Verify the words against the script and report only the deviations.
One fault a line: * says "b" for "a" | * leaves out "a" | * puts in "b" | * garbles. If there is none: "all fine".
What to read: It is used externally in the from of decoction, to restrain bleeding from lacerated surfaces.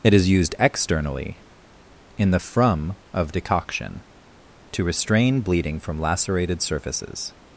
all fine